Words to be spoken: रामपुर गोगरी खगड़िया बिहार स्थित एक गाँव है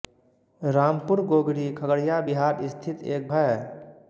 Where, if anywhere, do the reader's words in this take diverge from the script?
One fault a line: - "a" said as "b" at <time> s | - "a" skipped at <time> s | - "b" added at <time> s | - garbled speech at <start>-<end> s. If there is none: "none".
- "गाँव" skipped at 3.3 s